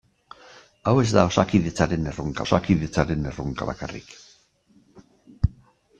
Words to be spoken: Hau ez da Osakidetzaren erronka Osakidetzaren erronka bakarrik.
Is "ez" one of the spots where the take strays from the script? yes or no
no